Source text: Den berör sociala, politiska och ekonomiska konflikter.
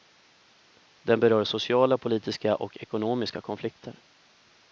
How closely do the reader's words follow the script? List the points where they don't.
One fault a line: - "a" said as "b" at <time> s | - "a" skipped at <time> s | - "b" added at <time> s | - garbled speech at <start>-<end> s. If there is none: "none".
none